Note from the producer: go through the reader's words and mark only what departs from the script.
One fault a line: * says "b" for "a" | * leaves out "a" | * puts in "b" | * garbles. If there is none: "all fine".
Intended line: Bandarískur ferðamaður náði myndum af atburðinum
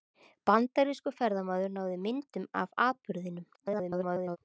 * garbles